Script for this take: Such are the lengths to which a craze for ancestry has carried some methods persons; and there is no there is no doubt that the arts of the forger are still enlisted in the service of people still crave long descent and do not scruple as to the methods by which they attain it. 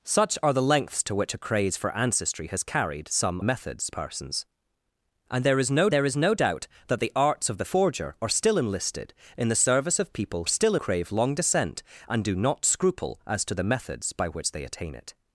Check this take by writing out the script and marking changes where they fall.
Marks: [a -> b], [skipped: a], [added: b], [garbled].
Such are the lengths to which a craze for ancestry has carried some methods persons; and there is no there is no doubt that the arts of the forger are still enlisted in the service of people still crave long descent and do not scruple as to the methods by which they attain it.